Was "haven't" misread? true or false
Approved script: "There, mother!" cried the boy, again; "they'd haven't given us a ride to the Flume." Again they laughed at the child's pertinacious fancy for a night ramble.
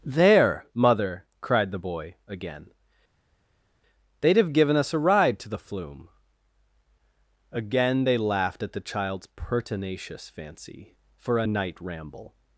true